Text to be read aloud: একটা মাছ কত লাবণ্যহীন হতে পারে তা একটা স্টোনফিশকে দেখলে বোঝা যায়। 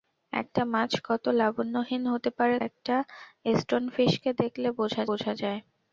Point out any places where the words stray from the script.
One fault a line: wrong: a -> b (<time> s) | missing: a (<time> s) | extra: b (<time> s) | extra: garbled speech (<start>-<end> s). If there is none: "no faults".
missing: তা (2.6 s)
extra: বোঝা (5.1 s)